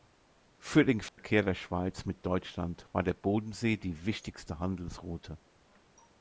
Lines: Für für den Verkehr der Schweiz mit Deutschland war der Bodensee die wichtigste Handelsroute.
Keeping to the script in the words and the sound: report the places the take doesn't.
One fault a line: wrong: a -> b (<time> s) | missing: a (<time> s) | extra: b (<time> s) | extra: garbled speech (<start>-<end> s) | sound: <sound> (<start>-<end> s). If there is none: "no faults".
missing: für (0.8 s)
sound: dropout (1.1-1.2 s)